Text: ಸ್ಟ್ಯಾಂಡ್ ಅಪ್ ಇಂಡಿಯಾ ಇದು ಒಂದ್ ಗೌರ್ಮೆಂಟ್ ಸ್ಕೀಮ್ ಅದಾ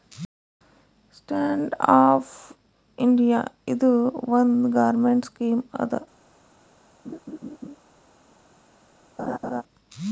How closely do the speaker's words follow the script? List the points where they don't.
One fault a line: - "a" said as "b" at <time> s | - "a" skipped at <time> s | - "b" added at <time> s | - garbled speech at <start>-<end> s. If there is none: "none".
none